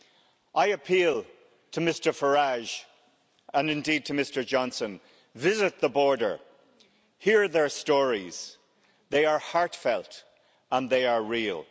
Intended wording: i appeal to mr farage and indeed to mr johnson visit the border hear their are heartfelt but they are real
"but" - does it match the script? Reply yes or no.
no